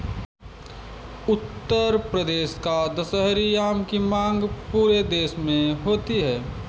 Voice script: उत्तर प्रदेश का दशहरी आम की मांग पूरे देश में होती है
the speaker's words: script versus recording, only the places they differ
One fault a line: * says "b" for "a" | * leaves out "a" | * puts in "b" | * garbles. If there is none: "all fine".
all fine